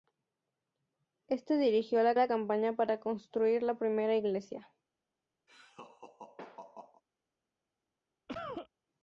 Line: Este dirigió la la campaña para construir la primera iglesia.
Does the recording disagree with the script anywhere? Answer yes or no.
no